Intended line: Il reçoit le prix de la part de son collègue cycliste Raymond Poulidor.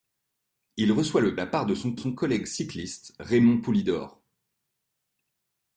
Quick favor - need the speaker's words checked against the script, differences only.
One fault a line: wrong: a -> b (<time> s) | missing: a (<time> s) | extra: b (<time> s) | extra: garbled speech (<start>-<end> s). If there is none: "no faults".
missing: prix de (1.4 s)
extra: son (2.0 s)